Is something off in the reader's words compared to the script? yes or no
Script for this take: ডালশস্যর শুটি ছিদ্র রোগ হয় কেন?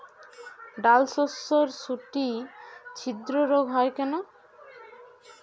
no